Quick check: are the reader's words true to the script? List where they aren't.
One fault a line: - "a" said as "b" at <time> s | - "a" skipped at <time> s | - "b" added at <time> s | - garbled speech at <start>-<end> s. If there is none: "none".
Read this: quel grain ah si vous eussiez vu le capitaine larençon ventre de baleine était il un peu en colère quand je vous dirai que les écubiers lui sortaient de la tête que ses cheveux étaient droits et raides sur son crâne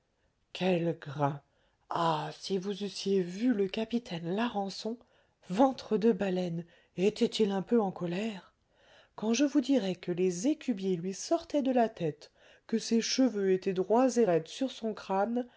none